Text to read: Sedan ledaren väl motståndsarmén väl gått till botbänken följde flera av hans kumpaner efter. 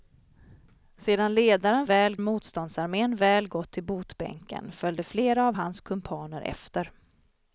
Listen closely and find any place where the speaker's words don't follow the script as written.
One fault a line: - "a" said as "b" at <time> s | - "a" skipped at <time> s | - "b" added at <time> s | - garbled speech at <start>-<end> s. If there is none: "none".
none